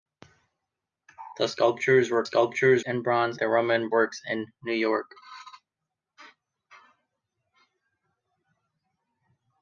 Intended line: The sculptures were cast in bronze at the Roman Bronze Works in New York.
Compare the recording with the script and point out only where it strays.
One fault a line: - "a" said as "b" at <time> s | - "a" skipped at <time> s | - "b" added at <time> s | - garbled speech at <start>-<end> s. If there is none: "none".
- "cast" said as "sculptures" at 2.2 s
- "at" skipped at 3.4 s
- "Bronze" skipped at 3.9 s